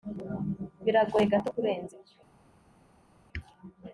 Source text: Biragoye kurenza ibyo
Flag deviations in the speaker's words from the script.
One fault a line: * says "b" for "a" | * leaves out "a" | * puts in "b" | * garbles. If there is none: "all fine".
* puts in "gato"